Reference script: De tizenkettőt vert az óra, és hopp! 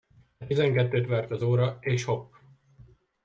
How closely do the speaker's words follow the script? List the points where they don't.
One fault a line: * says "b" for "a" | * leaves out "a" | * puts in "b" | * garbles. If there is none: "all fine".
all fine